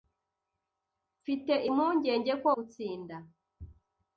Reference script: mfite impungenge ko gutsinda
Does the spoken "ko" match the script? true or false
true